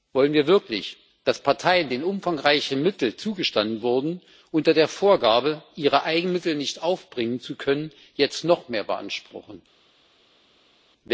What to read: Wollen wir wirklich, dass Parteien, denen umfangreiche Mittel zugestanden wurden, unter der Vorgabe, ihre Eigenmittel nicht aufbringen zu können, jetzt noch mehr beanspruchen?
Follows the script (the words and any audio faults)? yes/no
yes